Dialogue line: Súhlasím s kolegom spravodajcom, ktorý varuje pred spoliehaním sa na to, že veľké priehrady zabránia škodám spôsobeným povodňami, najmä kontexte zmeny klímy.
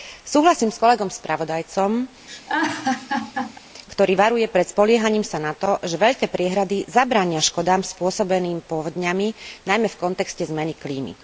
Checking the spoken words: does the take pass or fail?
fail